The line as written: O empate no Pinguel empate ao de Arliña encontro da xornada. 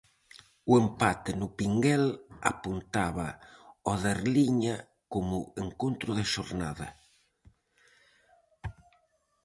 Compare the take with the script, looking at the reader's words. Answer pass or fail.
fail